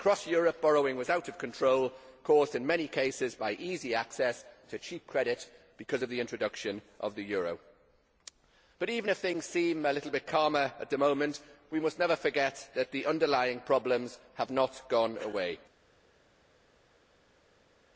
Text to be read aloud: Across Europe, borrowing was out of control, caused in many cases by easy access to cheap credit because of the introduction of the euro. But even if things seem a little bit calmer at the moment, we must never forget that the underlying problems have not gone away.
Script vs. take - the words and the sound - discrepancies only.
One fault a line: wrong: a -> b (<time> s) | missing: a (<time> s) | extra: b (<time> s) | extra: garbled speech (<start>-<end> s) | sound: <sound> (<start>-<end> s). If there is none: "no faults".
no faults